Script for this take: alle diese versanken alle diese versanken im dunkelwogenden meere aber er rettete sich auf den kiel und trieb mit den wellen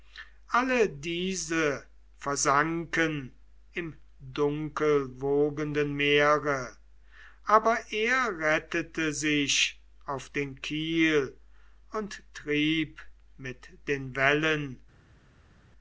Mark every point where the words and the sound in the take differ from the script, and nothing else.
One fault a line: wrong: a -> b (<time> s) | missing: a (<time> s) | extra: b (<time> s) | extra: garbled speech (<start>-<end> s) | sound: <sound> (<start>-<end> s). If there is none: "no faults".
missing: alle diese versanken (3.3 s)